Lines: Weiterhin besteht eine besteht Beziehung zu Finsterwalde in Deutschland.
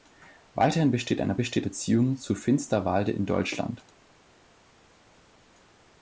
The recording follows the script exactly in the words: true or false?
true